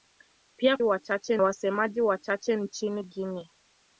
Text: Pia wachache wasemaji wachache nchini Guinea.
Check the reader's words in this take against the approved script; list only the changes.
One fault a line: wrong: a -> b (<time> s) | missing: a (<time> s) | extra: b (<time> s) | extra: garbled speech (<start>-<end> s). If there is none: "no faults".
no faults